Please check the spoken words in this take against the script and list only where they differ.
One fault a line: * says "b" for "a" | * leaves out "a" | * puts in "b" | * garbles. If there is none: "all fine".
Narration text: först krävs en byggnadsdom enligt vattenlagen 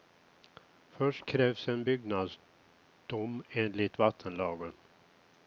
all fine